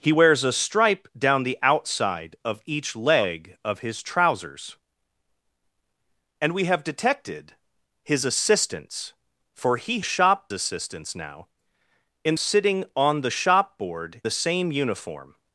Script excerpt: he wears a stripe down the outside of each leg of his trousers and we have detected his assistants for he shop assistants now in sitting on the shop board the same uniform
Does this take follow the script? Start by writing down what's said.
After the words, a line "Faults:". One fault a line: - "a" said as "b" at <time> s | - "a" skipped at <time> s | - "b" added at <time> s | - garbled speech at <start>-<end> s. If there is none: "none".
he wears a stripe down the outside of each leg of his trousers and we have detected his assistants for he shop assistants now in sitting on the shop board the same uniform
Faults:
none